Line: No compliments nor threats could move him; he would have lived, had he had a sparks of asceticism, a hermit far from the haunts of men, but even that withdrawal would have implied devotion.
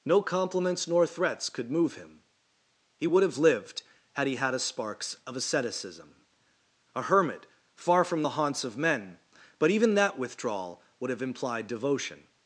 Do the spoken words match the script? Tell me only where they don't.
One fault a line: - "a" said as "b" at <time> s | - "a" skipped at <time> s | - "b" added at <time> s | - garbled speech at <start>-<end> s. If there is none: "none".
none